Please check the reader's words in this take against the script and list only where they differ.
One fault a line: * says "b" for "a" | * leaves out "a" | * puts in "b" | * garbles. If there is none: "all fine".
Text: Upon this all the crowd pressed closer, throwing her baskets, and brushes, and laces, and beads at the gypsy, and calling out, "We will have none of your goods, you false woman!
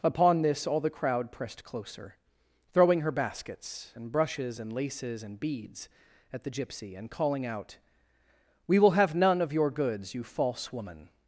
all fine